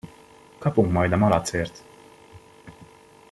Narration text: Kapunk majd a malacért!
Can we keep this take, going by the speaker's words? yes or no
yes